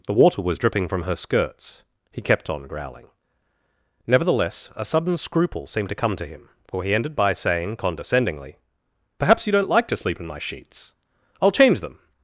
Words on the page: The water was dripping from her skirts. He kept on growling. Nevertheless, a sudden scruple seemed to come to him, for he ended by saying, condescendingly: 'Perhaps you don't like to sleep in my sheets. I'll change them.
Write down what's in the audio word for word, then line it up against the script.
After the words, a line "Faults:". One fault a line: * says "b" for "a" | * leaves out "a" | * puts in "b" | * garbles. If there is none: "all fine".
The water was dripping from her skirts. He kept on growling. Nevertheless, a sudden scruple seemed to come to him, for he ended by saying, condescendingly: 'Perhaps you don't like to sleep in my sheets. I'll change them.
Faults:
all fine